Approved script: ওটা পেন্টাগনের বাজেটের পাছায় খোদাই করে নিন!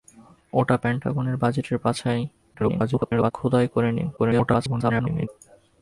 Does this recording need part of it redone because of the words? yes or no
yes